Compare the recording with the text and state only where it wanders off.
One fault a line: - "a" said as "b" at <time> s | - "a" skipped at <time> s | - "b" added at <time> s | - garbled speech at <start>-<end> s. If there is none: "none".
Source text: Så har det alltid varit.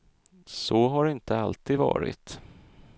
- "inte" added at 1.1 s